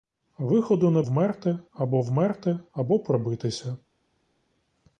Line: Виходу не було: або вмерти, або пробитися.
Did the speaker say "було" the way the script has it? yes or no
no